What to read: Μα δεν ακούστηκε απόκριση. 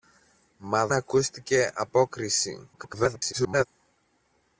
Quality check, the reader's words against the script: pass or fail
fail